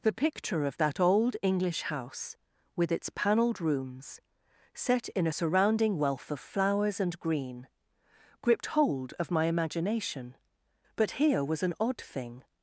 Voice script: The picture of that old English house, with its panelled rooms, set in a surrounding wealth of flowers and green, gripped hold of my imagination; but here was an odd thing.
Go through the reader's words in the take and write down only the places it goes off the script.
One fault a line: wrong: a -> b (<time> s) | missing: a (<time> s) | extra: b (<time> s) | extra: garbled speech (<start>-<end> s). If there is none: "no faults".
no faults